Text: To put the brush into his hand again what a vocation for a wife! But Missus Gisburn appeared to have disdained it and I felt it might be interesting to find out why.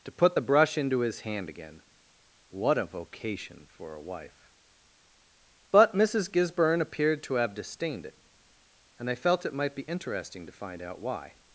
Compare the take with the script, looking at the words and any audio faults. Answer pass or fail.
pass